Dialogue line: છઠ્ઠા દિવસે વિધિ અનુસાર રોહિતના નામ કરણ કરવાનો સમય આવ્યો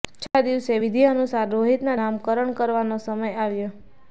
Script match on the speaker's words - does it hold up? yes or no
yes